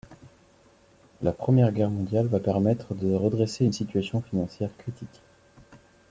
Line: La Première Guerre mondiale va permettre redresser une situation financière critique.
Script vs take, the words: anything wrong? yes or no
yes